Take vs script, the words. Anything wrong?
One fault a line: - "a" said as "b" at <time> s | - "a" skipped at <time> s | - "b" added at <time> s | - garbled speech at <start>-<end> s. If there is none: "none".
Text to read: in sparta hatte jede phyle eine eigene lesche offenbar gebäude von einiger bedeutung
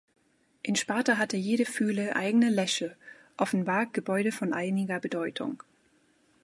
- "eine" skipped at 2.1 s